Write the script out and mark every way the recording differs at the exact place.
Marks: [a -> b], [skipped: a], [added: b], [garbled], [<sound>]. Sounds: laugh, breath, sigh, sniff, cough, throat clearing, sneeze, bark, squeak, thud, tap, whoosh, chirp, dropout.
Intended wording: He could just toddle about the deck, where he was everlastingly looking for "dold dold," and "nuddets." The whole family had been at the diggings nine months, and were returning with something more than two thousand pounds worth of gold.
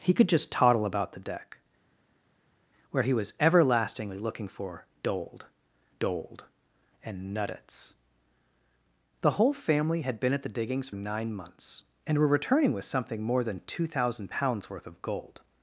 He could just toddle about the deck, where he was everlastingly looking for "dold dold," and "nuddets." The whole family had been at the diggings nine months, and were returning with something more than two thousand pounds worth of gold.